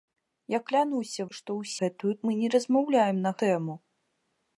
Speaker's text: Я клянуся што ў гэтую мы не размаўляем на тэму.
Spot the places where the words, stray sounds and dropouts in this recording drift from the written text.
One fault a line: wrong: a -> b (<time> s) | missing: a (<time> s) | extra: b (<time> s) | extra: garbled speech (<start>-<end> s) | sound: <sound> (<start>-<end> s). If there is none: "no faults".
no faults